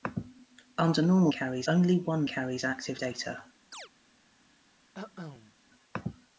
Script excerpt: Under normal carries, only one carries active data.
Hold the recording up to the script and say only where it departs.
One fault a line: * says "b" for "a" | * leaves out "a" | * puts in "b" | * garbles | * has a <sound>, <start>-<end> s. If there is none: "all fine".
* has a chirp, 3.7-3.9 s
* has a cough, 4.9-5.5 s